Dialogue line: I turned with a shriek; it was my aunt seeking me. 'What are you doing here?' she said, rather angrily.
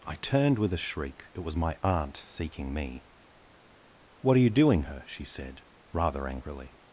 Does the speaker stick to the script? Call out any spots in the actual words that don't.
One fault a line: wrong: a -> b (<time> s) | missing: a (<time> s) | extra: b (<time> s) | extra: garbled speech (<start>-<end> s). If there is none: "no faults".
wrong: here -> her (4.8 s)